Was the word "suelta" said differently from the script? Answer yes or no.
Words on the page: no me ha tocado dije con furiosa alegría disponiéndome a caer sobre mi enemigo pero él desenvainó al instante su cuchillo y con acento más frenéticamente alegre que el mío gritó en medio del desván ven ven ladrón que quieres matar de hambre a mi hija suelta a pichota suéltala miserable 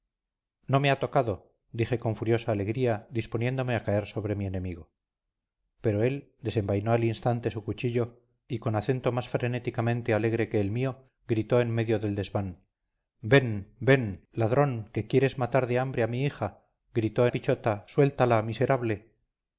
yes